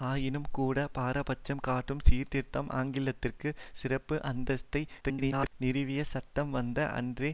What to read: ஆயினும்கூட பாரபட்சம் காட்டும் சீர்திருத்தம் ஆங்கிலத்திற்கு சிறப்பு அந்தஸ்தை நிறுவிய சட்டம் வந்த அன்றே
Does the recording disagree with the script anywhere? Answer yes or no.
yes